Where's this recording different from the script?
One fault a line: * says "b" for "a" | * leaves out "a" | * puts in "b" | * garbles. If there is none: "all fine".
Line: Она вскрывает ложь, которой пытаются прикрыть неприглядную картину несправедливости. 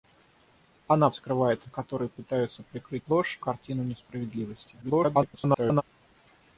* leaves out "ложь"
* says "ложь" for "неприглядную"
* garbles